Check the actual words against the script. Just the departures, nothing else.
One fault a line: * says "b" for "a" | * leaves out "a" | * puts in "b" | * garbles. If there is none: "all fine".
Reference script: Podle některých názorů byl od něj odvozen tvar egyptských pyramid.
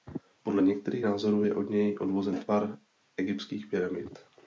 * says "je" for "byl"